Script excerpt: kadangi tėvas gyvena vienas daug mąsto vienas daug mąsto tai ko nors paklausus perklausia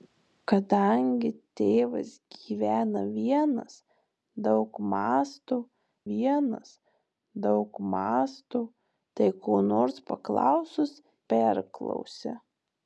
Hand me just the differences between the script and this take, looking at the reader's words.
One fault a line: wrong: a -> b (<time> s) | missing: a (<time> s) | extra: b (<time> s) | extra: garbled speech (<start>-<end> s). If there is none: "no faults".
no faults